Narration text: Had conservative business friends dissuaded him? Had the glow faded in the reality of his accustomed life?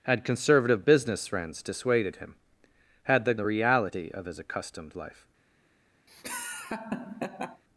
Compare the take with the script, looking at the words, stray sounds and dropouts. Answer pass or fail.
fail